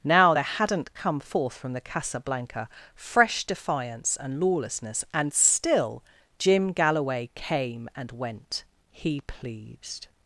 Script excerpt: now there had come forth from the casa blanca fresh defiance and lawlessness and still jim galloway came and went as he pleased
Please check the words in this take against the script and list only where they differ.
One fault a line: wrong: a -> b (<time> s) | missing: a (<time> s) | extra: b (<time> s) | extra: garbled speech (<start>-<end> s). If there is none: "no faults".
wrong: had -> hadn't (0.4 s)
missing: as (8.6 s)